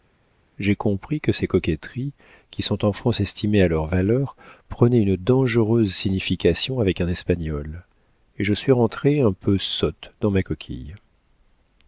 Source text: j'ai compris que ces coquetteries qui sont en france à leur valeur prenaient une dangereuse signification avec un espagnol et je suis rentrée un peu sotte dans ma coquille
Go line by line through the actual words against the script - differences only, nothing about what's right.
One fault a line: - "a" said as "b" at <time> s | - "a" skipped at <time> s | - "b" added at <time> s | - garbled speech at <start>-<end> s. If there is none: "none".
- "estimées" added at 3.2 s